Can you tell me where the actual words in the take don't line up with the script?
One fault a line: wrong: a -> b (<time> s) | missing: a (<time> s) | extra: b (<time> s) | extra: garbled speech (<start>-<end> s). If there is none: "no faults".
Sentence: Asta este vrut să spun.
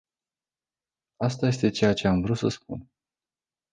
extra: ceea ce am (1.7 s)